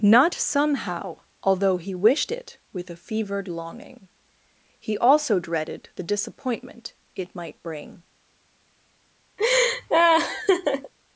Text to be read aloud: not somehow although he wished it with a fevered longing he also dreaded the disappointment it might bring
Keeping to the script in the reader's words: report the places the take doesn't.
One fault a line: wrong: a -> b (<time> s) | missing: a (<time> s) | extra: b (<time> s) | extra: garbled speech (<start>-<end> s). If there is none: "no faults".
no faults